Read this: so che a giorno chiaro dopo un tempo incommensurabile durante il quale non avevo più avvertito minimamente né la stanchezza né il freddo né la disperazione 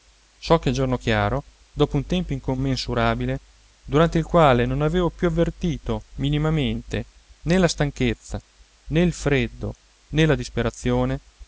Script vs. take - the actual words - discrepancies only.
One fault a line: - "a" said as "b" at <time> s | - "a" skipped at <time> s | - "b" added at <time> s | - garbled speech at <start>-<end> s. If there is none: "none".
none